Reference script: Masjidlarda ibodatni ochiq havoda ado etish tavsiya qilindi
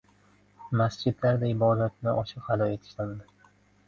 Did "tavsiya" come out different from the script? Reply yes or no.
yes